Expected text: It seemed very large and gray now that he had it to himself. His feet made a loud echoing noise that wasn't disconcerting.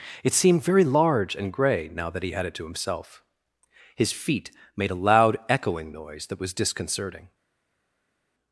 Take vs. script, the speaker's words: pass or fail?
fail